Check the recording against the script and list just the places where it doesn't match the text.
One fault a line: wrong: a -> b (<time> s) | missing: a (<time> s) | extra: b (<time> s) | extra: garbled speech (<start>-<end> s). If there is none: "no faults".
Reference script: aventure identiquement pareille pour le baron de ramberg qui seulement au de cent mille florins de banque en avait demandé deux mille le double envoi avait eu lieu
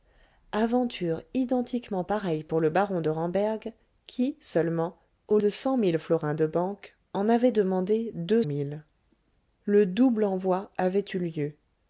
no faults